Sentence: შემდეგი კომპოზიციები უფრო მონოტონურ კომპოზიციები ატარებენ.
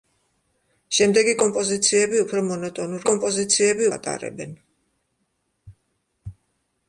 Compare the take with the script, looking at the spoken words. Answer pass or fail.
pass